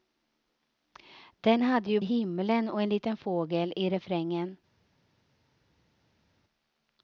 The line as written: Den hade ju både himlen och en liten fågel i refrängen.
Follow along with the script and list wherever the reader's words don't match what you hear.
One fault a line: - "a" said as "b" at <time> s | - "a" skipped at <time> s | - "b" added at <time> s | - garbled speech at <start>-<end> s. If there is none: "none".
- "både" skipped at 2.0 s